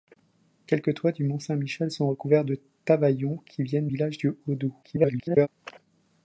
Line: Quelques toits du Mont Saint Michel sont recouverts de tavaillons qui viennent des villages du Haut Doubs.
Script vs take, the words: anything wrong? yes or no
yes